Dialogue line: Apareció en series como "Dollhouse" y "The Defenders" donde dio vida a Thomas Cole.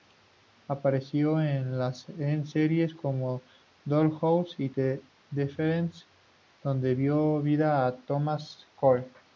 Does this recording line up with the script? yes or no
yes